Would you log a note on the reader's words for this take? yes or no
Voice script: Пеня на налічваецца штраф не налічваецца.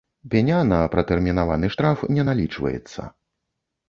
yes